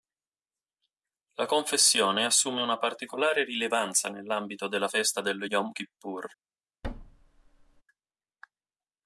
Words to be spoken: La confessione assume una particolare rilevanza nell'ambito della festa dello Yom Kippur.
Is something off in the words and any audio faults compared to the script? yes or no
yes